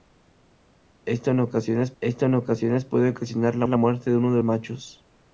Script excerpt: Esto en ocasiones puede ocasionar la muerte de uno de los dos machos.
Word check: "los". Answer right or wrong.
wrong